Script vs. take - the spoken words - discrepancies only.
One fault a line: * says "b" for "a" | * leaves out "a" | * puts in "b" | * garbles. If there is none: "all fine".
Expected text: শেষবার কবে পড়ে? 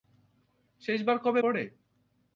all fine